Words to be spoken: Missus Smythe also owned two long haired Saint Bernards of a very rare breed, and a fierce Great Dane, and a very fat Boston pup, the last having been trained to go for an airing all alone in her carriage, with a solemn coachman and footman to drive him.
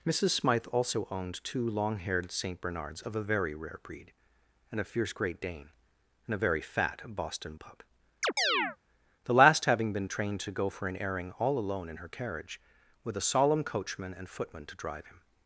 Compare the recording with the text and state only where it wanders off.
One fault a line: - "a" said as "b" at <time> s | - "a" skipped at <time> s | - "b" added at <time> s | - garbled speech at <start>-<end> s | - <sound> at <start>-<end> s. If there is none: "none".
- chirp at 8.2-8.8 s